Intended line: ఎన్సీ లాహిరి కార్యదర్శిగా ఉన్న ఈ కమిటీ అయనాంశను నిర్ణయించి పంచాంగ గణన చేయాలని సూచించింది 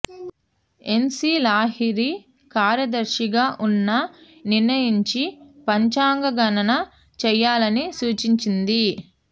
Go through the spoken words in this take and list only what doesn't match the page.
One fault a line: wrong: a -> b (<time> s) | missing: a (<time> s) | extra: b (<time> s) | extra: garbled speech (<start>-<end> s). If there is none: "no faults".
missing: ఈ కమిటీ అయనాంశను (3.9 s)